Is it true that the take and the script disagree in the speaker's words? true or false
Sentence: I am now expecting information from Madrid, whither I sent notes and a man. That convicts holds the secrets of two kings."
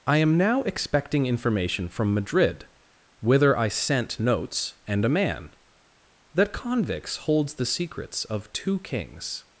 false